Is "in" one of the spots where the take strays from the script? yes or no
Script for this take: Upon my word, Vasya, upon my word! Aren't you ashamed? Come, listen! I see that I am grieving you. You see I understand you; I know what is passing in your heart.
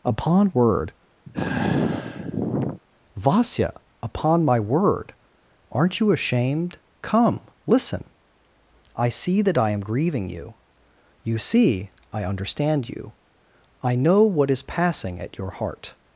yes